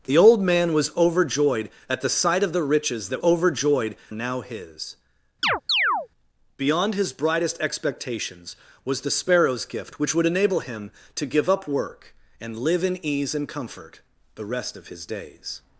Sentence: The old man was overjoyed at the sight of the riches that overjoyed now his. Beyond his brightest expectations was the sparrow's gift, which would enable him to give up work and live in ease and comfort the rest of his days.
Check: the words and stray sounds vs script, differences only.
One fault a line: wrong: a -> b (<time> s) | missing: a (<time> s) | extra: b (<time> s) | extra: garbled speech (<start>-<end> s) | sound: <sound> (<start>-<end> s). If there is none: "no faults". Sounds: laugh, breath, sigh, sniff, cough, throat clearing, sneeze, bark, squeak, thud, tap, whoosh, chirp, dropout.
sound: chirp (5.4-6.1 s)